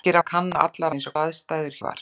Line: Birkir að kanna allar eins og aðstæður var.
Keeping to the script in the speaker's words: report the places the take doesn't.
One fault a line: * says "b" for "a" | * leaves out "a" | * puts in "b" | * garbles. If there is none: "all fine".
all fine